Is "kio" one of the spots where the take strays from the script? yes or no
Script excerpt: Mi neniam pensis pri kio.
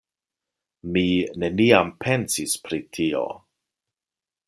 yes